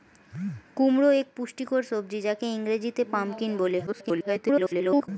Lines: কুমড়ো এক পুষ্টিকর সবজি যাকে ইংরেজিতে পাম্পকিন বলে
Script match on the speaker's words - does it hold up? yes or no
no